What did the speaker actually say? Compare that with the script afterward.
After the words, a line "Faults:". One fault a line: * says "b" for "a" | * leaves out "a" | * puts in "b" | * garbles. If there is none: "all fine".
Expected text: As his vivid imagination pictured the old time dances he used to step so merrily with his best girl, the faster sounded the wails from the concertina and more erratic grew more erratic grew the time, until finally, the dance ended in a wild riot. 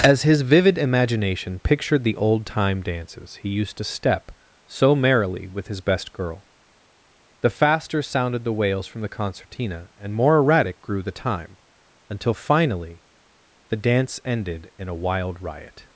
As his vivid imagination pictured the old time dances he used to step so merrily with his best girl, the faster sounded the wails from the concertina and more erratic grew the time, until finally, the dance ended in a wild riot.
Faults:
* leaves out "more erratic grew"